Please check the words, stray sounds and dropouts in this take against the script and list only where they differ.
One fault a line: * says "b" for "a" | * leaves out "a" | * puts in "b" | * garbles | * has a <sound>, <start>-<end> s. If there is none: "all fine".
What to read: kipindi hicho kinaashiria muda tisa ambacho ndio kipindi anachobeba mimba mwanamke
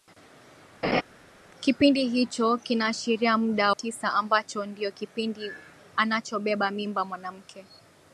* has a laugh, 0.8-1.0 s